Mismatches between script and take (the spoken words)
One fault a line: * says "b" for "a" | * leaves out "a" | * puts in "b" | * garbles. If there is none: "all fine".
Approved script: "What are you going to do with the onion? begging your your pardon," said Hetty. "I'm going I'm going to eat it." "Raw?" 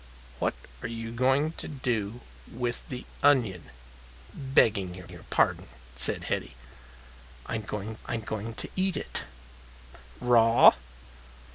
all fine